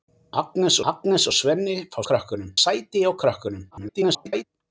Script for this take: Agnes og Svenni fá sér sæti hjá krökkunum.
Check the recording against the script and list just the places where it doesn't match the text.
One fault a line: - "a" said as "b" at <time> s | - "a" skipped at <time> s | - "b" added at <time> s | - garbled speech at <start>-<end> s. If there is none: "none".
- "agnes" added at 0.9 s
- "sér" said as "krökkunum" at 2.1 s
- garbled speech at 3.7-4.4 s